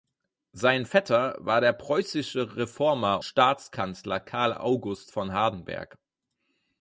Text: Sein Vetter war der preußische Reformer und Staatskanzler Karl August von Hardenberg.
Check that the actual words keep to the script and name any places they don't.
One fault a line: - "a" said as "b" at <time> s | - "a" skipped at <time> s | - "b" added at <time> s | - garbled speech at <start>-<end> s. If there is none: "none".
- "und" skipped at 3.2 s